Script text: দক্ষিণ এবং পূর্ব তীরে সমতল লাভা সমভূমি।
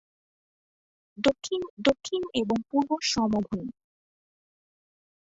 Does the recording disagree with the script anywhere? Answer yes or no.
yes